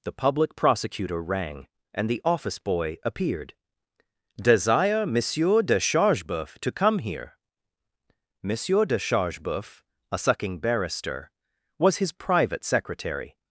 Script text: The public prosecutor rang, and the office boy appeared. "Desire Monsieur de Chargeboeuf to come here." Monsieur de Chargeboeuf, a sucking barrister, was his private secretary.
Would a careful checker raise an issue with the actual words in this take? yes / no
no